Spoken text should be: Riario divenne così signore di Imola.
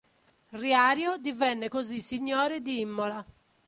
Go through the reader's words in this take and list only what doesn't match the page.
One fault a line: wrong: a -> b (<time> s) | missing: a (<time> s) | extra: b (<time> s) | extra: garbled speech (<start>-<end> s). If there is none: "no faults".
no faults